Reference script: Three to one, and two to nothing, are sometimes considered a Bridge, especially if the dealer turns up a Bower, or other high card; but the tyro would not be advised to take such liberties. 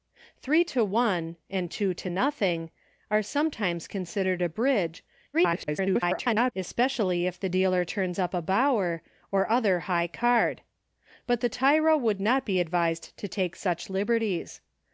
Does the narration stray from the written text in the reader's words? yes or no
yes